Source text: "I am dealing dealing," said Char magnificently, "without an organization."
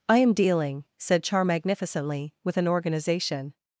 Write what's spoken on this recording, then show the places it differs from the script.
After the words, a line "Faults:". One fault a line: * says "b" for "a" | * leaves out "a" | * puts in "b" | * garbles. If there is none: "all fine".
"I am dealing," said Char magnificently, "with an organization."
Faults:
* leaves out "dealing"
* says "with" for "without"